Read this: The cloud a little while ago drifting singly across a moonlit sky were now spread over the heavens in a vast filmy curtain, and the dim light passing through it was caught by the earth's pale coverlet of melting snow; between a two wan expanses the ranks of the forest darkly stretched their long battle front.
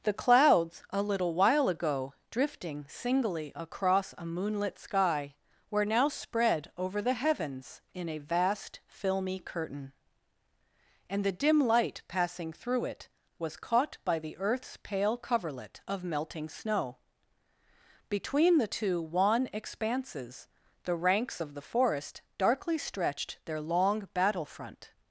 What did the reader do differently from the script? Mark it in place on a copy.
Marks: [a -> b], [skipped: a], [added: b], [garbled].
The [cloud -> clouds] a little while ago drifting singly across a moonlit sky were now spread over the heavens in a vast filmy curtain, and the dim light passing through it was caught by the earth's pale coverlet of melting snow; between [a -> the] two wan expanses the ranks of the forest darkly stretched their long battle front.